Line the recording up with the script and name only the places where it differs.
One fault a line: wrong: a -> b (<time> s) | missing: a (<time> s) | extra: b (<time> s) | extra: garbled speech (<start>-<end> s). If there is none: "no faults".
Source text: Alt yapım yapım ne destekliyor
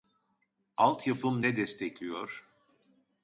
missing: yapım (1.4 s)